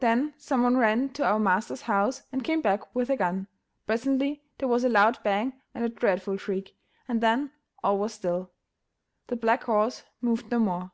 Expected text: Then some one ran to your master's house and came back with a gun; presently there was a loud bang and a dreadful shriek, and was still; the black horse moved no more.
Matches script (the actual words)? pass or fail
fail